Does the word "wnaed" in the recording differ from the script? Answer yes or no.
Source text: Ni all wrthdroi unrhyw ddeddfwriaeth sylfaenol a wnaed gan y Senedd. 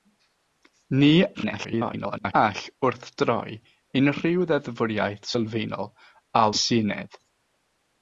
yes